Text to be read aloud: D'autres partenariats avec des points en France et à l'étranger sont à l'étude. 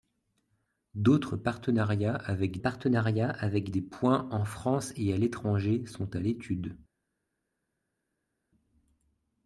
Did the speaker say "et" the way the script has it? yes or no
yes